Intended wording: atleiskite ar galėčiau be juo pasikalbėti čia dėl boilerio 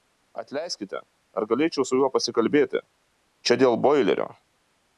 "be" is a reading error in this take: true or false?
true